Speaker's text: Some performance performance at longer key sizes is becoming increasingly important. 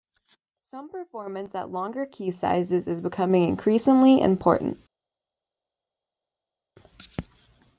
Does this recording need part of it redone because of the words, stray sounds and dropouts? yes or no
yes